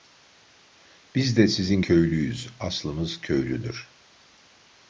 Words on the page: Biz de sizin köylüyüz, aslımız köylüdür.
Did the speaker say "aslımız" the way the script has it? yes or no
yes